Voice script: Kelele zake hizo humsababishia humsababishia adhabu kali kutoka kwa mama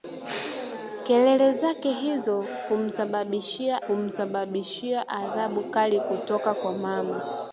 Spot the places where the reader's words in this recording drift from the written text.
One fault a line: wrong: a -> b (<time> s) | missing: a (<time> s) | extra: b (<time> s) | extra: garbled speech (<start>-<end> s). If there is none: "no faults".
no faults